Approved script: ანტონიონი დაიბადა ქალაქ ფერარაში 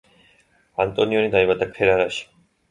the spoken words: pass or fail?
fail